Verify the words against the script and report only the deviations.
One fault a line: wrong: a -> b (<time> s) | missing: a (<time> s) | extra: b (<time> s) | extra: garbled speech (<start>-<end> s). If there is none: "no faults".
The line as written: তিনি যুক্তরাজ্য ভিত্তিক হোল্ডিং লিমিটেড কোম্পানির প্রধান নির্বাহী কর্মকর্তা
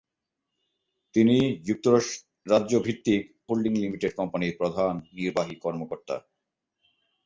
no faults